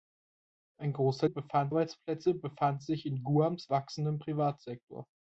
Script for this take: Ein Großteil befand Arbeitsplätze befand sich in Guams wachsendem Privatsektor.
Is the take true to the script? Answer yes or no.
yes